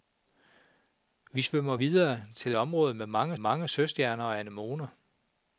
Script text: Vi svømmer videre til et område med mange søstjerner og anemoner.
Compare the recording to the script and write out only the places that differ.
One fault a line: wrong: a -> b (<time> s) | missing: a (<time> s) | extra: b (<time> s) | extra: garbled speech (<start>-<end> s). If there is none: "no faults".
missing: et (2.5 s)
extra: mange (3.4 s)